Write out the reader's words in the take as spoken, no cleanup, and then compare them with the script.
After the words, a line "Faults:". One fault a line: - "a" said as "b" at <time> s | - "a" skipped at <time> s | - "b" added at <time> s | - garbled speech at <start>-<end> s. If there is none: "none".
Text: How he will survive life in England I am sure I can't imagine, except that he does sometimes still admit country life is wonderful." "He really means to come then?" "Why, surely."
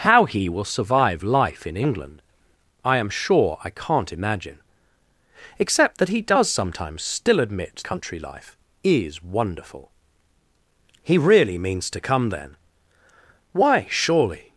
How he will survive life in England I am sure I can't imagine, except that he does sometimes still admit country life is wonderful." "He really means to come then?" "Why, surely."
Faults:
none